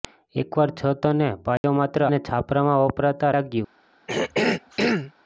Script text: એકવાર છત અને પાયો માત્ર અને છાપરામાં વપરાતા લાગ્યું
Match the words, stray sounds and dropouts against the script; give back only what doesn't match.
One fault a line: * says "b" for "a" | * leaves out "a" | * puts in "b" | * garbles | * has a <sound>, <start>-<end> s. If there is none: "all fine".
* has a dropout, 1.6-1.6 s
* has a throat clearing, 4.1-5.1 s